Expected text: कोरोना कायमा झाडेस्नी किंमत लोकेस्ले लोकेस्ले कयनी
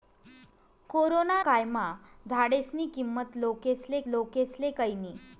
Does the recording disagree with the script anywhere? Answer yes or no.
no